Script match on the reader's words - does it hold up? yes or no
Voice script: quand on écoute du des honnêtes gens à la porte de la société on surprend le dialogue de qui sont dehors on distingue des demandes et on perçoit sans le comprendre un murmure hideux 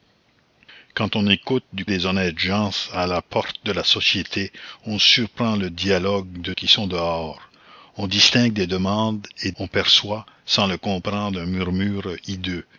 yes